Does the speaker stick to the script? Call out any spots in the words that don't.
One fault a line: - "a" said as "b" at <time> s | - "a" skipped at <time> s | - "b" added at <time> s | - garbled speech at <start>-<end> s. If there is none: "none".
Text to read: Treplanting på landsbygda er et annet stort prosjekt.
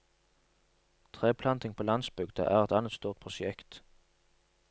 none